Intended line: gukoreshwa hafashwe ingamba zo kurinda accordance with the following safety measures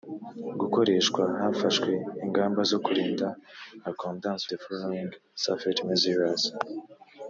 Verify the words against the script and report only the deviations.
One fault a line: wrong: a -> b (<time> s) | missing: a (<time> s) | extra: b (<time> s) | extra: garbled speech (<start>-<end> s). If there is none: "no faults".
missing: with (4.4 s)